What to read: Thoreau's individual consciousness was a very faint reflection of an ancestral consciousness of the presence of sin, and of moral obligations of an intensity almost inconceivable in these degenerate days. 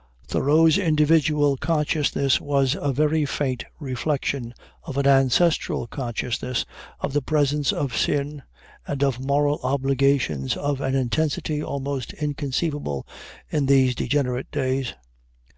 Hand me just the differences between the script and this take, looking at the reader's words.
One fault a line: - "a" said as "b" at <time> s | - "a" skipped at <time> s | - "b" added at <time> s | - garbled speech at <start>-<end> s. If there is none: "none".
none